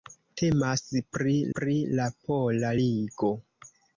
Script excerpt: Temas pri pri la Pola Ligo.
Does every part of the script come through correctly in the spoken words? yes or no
yes